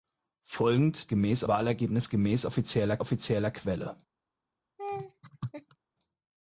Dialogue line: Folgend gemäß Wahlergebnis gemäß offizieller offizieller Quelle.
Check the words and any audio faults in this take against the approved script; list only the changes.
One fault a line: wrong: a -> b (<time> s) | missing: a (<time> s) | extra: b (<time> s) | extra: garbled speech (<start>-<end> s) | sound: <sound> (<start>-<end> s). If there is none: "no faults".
sound: laugh (4.8-5.8 s)